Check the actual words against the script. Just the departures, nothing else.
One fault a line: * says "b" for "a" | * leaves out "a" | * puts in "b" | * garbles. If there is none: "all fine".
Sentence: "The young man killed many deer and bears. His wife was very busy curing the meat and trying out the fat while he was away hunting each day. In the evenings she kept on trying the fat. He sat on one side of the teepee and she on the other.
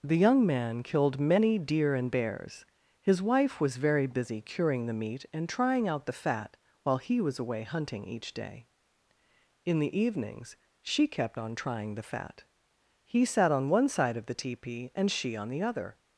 all fine